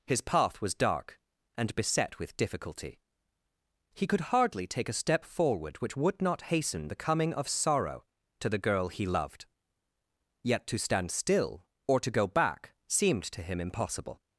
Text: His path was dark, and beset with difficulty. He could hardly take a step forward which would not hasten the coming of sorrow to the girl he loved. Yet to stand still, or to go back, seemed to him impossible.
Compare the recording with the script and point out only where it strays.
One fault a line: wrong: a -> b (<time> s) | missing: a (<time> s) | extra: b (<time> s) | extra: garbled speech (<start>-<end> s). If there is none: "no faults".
no faults